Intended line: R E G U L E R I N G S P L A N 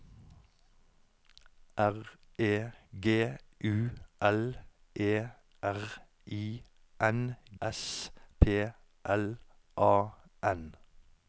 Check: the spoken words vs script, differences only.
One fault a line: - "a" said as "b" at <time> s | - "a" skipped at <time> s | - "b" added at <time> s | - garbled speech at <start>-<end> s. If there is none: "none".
- "G" skipped at 7.4 s